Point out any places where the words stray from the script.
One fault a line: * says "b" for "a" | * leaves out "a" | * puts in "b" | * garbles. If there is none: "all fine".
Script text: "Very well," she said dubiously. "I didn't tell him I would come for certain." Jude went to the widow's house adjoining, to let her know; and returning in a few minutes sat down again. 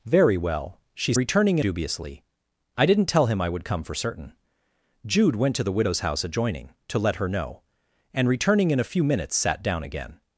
* says "returning" for "said"